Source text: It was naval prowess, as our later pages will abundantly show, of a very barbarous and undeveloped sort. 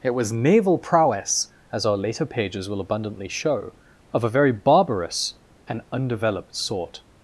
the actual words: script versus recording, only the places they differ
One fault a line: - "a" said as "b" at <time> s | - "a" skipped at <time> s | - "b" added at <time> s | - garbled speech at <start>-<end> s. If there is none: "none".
none